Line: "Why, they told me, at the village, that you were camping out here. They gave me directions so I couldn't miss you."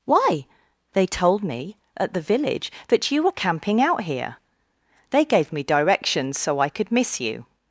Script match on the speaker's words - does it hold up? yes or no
no